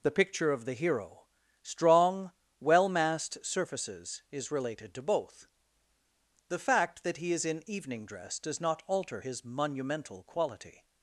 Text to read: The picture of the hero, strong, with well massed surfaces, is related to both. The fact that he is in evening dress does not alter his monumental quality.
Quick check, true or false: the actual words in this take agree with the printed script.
false